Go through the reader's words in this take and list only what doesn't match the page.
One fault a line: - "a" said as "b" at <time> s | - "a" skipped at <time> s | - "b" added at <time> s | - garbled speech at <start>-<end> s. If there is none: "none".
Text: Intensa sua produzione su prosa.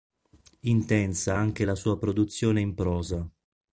- "anche la" added at 1.4 s
- "su" said as "in" at 2.6 s